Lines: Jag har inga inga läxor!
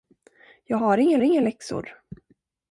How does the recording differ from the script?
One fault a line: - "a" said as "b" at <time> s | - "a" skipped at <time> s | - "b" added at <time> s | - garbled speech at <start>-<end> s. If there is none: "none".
none